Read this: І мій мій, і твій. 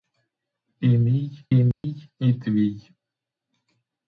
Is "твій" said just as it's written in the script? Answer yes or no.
yes